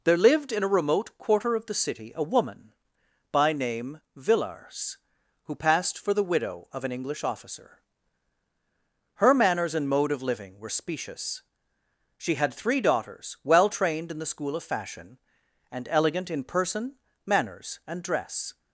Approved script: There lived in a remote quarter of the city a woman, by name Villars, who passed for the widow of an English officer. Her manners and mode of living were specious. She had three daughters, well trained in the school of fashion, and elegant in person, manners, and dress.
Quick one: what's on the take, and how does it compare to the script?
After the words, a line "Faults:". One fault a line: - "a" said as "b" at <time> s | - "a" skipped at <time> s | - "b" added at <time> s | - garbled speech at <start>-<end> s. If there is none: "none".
There lived in a remote quarter of the city a woman, by name Villars, who passed for the widow of an English officer. Her manners and mode of living were specious. She had three daughters, well trained in the school of fashion, and elegant in person, manners, and dress.
Faults:
none